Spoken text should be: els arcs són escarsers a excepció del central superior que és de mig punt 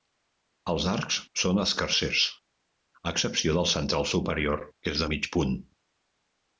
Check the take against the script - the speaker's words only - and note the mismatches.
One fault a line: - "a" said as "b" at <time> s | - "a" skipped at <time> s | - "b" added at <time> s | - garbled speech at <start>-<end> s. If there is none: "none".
none